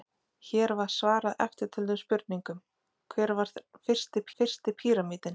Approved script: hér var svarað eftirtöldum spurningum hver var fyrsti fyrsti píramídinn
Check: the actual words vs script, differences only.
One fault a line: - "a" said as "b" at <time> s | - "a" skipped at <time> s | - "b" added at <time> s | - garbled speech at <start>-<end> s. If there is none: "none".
none